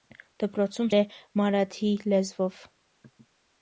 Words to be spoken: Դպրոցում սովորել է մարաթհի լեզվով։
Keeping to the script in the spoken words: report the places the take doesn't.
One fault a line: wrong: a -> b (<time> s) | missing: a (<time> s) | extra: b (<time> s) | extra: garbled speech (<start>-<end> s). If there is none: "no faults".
missing: սովորել (0.9 s)